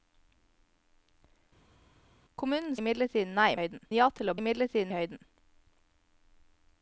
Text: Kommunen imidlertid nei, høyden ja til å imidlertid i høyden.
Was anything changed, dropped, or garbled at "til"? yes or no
no